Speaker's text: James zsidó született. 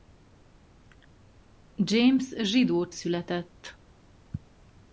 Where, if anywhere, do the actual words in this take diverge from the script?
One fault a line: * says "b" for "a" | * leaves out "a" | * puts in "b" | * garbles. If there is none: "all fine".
all fine